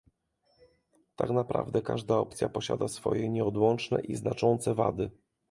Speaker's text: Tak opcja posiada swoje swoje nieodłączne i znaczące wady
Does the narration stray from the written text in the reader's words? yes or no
yes